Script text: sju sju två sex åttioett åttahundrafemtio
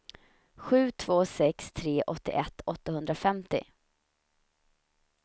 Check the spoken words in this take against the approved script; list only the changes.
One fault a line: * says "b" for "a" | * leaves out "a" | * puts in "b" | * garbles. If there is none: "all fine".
* leaves out "sju"
* puts in "tre"